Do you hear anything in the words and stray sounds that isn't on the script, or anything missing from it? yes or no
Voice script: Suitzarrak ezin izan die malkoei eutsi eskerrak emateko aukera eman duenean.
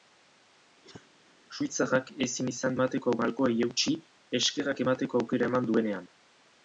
yes